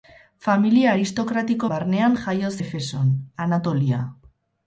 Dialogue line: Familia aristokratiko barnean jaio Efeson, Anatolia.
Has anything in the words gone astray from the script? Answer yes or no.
no